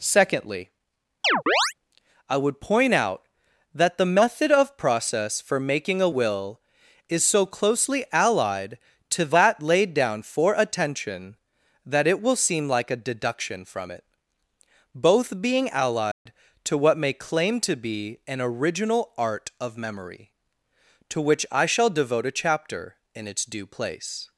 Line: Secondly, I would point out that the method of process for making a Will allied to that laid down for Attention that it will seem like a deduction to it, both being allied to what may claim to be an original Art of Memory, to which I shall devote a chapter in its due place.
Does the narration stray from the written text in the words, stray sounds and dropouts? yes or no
yes